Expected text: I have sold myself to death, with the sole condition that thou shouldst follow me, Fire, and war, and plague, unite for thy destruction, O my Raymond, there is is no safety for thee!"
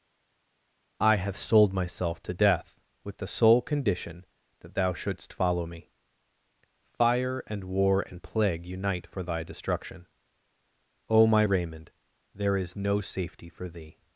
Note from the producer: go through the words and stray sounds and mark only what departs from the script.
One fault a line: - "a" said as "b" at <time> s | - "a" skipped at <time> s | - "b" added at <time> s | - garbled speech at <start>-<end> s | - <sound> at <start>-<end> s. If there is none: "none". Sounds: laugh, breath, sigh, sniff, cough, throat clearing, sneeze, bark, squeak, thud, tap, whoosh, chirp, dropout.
- "is" skipped at 12.7 s